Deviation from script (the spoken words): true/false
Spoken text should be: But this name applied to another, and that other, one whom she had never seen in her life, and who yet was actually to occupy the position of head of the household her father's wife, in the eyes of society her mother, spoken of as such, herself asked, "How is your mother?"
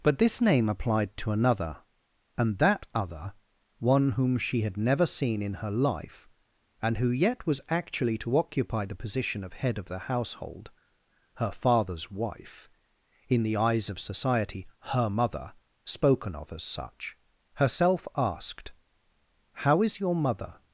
false